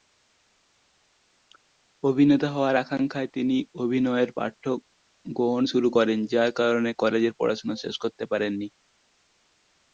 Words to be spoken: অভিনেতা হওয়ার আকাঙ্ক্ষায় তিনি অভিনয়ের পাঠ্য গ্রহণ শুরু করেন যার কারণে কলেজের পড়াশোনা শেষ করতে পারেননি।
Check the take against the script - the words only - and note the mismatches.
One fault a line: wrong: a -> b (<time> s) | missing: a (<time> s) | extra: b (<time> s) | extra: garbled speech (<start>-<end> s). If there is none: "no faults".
no faults